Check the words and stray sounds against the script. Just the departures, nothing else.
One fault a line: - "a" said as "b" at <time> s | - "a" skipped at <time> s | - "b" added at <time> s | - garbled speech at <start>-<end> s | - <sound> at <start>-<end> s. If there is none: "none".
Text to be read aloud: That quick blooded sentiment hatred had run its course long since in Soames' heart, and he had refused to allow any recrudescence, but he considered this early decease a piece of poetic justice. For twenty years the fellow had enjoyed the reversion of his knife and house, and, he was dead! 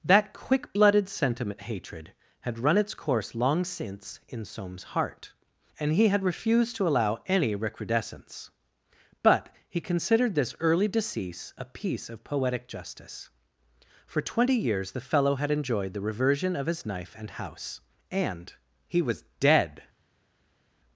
none